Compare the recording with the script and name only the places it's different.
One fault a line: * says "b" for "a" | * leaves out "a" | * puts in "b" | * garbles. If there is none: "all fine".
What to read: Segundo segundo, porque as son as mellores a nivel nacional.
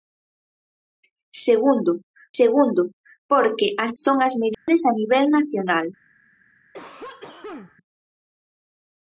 all fine